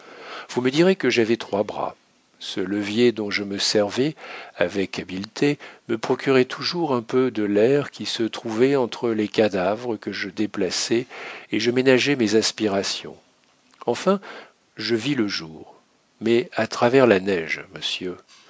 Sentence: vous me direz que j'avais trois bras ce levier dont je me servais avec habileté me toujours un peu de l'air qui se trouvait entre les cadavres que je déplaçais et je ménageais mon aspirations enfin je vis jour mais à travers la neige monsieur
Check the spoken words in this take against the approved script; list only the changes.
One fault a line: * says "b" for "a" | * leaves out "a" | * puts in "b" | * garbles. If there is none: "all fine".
* puts in "procurait"
* says "mes" for "mon"
* puts in "le"